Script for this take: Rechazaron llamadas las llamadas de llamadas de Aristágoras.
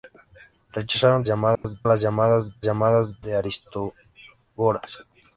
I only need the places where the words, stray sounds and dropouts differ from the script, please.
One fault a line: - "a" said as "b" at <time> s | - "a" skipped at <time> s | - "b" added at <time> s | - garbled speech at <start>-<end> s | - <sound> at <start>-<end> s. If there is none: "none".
- dropout at 1.6-1.6 s